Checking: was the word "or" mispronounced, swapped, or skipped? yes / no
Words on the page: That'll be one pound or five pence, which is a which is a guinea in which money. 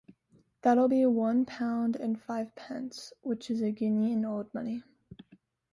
yes